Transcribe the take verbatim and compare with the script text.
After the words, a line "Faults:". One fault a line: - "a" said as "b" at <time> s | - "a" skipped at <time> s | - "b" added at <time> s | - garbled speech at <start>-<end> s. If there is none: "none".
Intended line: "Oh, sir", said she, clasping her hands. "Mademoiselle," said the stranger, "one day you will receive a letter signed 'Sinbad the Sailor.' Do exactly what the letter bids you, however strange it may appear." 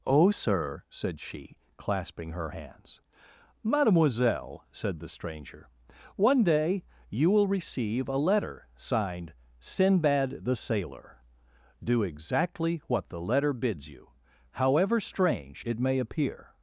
"Oh, sir", said she, clasping her hands. "Mademoiselle," said the stranger, "one day you will receive a letter signed 'Sinbad the Sailor.' Do exactly what the letter bids you, however strange it may appear."
Faults:
none